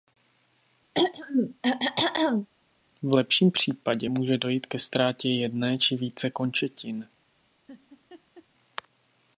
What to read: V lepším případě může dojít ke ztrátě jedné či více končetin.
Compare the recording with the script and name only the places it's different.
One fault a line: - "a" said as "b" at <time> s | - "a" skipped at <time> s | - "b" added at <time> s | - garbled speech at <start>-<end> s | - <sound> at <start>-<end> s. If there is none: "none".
- throat clearing at 0.9-2.5 s
- laugh at 7.7-8.5 s